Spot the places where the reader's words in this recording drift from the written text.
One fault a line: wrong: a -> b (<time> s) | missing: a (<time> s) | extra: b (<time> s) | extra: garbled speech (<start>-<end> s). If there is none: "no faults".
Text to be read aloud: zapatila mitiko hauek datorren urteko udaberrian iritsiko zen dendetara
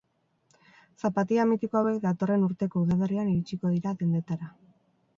wrong: zen -> dira (3.8 s)